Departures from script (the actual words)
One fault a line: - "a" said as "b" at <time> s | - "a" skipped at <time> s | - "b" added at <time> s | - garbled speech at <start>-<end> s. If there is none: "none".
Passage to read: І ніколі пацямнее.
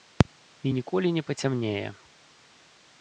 - "не" added at 1.1 s